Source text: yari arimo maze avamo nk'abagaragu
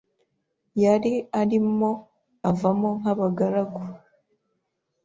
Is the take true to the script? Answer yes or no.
no